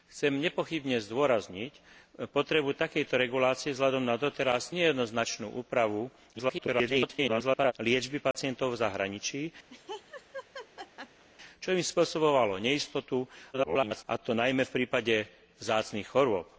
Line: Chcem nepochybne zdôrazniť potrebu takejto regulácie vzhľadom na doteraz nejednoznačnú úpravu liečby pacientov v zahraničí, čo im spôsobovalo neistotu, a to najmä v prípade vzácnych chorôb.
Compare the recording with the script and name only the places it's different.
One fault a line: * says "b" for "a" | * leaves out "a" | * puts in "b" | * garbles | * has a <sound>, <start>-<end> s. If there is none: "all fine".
* garbles
* has a dropout, 8.3-8.3 s
* has a laugh, 9.7-11.3 s
* garbles